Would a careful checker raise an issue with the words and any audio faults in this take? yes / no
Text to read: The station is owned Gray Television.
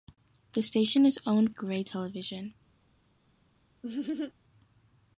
yes